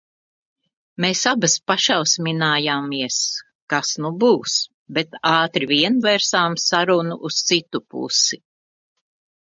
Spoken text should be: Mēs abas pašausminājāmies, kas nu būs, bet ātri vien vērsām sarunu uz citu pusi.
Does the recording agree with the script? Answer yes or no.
yes